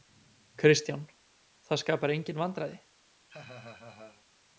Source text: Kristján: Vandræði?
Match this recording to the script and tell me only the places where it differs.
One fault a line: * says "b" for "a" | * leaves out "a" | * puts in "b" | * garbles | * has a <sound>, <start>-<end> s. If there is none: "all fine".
* puts in "Það skapar engin"
* has a laugh, 3.3-4.3 s